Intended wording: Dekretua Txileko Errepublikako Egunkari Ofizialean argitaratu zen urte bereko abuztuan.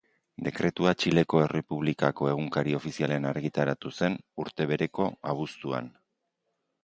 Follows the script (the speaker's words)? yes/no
yes